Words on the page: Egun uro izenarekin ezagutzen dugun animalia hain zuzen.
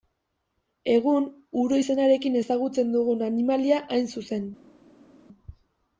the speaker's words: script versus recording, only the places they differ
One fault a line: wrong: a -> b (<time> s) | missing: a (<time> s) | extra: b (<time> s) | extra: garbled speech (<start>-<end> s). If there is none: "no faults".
no faults